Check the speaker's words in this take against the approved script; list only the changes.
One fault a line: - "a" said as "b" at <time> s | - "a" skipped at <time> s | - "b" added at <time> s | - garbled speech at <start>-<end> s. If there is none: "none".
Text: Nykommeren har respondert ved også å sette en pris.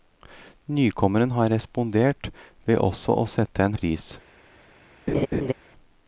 none